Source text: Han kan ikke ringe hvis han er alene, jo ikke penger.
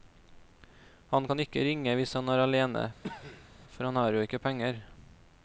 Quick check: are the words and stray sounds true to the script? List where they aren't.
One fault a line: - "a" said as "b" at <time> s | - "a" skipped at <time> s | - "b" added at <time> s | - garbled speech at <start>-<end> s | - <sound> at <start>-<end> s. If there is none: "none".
- cough at 3.0-3.5 s
- "for han har" added at 3.7 s